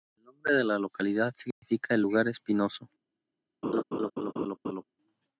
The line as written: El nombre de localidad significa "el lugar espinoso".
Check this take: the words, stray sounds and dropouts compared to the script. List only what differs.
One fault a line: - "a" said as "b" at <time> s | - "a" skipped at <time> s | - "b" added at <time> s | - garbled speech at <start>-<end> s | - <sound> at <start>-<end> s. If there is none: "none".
- "la" added at 0.6 s
- dropout at 1.5-1.6 s
- laugh at 3.6-4.8 s